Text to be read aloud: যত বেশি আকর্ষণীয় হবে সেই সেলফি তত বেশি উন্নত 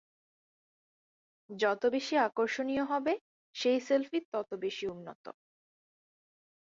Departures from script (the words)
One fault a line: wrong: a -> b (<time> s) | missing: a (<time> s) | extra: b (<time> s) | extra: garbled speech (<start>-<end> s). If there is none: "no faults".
no faults